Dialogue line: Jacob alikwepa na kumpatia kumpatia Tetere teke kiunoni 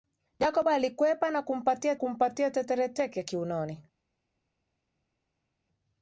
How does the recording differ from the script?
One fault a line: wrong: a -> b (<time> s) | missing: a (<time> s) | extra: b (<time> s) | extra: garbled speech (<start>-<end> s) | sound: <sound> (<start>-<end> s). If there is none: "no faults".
no faults